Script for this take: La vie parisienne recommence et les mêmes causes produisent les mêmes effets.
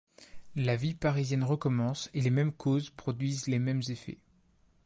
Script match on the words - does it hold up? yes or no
yes